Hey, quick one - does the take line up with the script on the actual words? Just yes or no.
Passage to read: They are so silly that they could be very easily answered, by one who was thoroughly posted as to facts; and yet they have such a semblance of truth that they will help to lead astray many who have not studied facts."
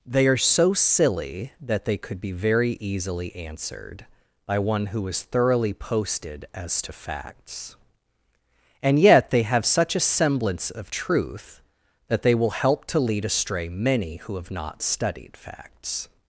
no